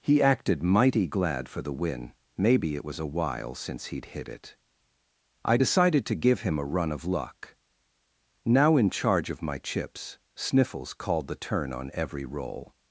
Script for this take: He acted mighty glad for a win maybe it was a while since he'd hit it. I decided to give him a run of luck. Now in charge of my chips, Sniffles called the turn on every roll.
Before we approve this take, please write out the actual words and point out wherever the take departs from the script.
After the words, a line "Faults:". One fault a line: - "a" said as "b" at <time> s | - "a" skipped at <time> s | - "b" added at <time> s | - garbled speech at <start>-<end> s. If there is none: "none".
He acted mighty glad for the win maybe it was a while since he'd hit it. I decided to give him a run of luck. Now in charge of my chips, Sniffles called the turn on every roll.
Faults:
- "a" said as "the" at 1.6 s